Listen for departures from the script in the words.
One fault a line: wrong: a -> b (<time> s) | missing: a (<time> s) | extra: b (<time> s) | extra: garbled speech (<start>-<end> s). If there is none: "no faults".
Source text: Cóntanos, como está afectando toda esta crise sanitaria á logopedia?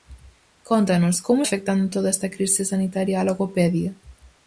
missing: está (1.4 s)